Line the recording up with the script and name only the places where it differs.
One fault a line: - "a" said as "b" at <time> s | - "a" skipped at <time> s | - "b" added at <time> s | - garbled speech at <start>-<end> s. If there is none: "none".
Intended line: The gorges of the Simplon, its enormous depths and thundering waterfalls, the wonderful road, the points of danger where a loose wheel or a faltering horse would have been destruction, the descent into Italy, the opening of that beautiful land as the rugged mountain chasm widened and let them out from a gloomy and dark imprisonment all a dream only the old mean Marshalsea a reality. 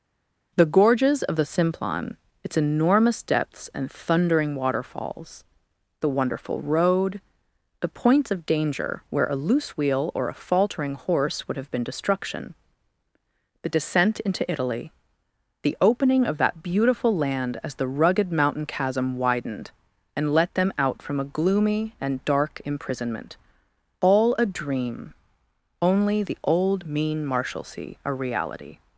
none